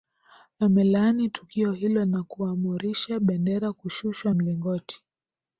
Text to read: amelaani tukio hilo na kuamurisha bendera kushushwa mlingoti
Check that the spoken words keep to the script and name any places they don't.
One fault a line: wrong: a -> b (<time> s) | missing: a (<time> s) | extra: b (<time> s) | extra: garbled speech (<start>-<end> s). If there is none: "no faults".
no faults